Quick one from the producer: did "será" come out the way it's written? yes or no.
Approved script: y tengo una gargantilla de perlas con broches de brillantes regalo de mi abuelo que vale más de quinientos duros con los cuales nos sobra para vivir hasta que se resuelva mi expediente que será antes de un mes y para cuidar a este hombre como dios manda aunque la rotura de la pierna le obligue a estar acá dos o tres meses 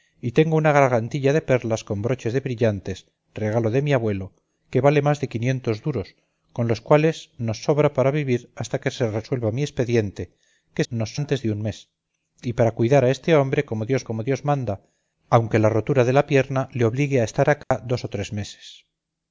no